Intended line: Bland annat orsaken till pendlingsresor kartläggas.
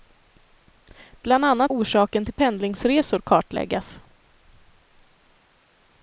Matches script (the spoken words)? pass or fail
pass